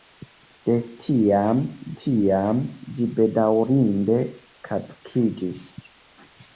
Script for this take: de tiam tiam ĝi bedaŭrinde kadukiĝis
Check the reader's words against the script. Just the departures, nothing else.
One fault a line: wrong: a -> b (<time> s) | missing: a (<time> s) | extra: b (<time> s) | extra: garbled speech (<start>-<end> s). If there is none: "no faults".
no faults